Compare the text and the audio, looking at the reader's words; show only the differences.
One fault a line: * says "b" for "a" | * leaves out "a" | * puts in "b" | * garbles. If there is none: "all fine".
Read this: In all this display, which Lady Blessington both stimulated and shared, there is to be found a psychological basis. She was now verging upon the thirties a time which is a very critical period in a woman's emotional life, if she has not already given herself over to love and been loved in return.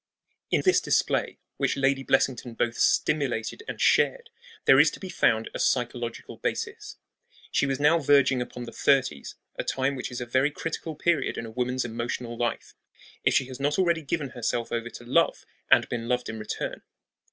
* leaves out "all"